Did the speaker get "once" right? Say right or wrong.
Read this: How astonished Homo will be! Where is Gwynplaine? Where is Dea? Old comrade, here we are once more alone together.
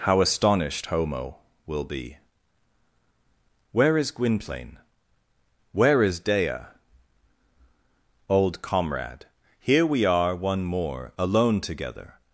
wrong